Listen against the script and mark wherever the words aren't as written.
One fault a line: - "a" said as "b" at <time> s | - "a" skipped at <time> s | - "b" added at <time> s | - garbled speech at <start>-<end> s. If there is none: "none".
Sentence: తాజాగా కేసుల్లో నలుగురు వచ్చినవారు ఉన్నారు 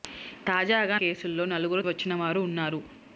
none